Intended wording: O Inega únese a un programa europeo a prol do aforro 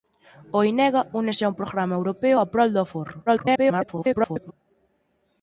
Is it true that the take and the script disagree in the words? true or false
true